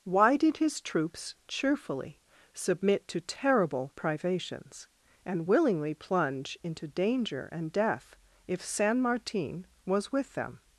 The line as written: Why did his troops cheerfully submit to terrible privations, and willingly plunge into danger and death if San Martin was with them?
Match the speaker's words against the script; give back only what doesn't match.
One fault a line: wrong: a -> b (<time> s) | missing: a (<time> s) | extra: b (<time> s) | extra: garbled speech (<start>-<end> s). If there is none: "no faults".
no faults